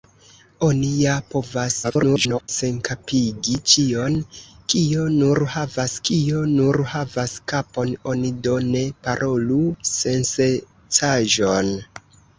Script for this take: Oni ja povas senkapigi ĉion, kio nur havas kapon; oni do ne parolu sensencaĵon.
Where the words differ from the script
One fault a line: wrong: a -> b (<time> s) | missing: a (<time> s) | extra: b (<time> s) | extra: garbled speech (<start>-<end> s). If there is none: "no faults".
extra: garbled speech (1.8-2.5 s)
extra: kio nur havas (6.1 s)